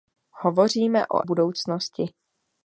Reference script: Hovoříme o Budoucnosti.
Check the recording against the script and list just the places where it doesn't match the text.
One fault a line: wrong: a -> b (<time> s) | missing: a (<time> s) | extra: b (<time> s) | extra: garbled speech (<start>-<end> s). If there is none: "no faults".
no faults